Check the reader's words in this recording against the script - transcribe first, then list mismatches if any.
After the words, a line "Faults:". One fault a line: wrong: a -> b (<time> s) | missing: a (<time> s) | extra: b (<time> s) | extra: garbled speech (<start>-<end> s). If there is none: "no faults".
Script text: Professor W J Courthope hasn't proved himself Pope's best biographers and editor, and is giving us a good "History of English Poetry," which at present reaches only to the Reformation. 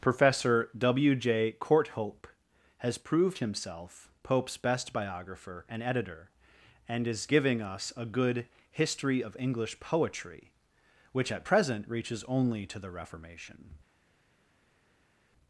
Professor W J Courthope has proved himself Pope's best biographer and editor, and is giving us a good "History of English Poetry," which at present reaches only to the Reformation.
Faults:
wrong: hasn't -> has (2.8 s)
wrong: biographers -> biographer (4.9 s)